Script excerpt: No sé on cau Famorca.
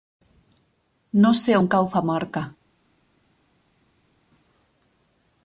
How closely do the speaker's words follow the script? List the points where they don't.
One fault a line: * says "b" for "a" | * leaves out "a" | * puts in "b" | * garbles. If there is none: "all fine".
all fine